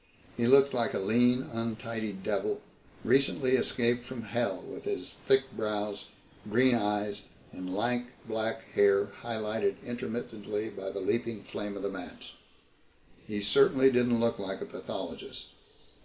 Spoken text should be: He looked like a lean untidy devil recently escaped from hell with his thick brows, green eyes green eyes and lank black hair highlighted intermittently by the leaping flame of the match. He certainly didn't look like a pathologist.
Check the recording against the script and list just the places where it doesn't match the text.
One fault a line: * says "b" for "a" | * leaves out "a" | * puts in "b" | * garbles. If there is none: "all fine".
* leaves out "green eyes"